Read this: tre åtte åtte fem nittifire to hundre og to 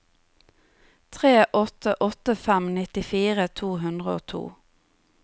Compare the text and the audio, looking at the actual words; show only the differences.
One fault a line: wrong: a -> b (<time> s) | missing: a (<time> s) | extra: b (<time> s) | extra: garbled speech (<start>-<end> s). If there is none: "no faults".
no faults